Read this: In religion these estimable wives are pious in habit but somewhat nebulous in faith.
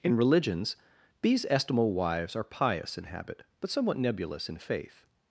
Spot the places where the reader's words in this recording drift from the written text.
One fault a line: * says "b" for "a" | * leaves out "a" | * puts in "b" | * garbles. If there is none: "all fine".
* says "religions" for "religion"